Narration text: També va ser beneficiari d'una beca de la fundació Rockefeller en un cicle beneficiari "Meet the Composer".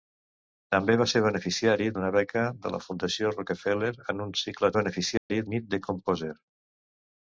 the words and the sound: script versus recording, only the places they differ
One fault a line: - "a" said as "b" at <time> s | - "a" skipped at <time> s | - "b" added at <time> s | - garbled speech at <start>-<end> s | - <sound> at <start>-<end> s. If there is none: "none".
- dropout at 5.2-5.3 s